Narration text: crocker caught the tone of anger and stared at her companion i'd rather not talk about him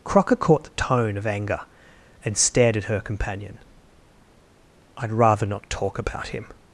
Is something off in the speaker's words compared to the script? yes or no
no